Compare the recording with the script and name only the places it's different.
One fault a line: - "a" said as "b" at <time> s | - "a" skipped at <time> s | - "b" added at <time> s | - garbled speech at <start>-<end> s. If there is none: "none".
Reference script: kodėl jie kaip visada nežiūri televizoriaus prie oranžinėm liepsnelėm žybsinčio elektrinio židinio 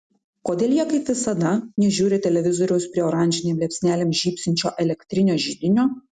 none